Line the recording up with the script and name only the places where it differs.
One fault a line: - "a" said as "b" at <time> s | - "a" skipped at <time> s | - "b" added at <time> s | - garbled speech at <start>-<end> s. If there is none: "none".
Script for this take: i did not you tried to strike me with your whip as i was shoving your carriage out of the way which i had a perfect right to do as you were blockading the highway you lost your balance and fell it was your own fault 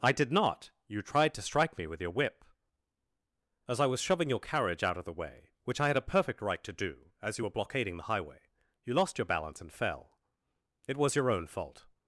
none